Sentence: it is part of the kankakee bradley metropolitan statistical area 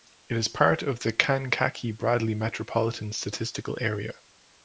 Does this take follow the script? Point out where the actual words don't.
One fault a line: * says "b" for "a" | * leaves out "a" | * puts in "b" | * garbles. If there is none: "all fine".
all fine